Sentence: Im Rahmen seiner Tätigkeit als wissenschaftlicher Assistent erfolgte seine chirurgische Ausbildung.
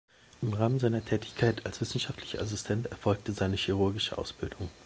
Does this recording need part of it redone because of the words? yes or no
no